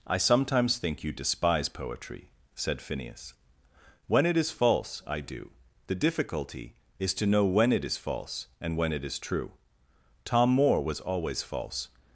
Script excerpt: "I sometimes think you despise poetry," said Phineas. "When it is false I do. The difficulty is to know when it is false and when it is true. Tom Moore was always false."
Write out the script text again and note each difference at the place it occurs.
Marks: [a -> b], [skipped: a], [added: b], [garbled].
"I sometimes think you despise poetry," said Phineas. "When it is false I do. The difficulty is to know when it is false and when it is true. Tom Moore was always false."